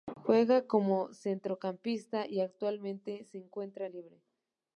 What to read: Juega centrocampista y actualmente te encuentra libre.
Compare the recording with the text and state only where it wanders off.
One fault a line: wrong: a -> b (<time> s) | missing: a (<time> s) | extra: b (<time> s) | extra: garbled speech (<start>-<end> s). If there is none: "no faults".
extra: como (0.7 s)
wrong: te -> se (3.3 s)